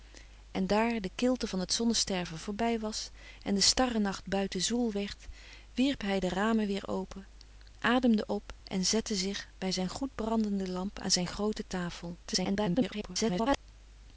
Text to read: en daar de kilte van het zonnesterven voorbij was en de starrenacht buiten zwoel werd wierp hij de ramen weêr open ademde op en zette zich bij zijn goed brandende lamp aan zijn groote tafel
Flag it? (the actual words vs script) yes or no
yes